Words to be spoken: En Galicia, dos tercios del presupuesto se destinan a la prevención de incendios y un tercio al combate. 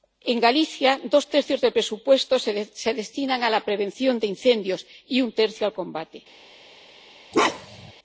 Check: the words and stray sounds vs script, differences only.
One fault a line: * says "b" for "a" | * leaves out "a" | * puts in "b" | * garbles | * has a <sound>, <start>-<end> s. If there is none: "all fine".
* has a bark, 7.3-7.9 s